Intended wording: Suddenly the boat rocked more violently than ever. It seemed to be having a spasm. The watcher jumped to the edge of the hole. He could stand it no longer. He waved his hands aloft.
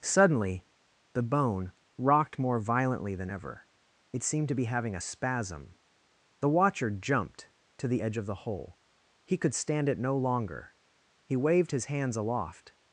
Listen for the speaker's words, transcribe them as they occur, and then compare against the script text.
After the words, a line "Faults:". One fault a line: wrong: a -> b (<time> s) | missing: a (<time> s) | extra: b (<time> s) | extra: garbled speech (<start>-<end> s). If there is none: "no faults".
Suddenly the bone rocked more violently than ever. It seemed to be having a spasm. The watcher jumped to the edge of the hole. He could stand it no longer. He waved his hands aloft.
Faults:
wrong: boat -> bone (1.2 s)